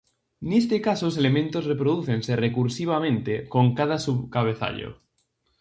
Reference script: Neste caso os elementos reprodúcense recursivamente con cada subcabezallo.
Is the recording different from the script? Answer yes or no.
no